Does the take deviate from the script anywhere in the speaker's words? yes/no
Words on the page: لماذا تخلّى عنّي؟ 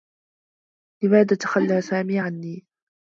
yes